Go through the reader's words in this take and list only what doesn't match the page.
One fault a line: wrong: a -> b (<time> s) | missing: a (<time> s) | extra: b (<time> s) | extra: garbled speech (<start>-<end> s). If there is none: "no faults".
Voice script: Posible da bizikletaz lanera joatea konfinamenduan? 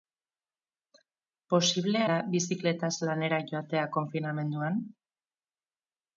no faults